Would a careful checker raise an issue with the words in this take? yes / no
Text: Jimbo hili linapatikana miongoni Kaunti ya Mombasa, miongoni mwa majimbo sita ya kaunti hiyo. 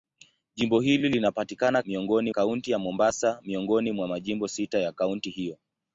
no